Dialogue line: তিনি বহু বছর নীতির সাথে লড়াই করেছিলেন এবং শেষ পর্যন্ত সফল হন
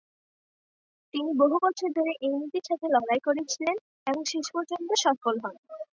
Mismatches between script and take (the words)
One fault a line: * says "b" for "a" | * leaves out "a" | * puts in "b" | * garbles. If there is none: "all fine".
* puts in "ধরে এই"